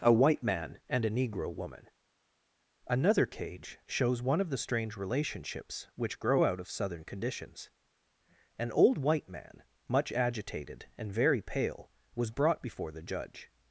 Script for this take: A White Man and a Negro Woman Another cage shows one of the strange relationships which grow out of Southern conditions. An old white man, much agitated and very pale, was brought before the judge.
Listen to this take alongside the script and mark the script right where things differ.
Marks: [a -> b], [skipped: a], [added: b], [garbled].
A White Man and a Negro Woman Another cage shows one of the strange relationships which grow out of Southern conditions. An old white man, much agitated and very pale, was brought before the judge.